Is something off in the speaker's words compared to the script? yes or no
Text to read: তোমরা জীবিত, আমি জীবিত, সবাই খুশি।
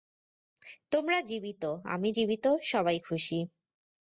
no